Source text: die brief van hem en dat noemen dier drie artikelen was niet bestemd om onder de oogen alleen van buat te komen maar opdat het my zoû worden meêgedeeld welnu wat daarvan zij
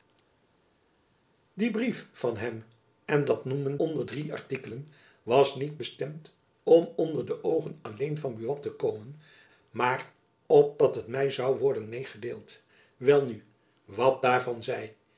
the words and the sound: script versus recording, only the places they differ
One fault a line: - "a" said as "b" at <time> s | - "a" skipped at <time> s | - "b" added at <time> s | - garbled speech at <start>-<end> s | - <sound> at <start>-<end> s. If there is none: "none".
- "dier" said as "onder" at 3.8 s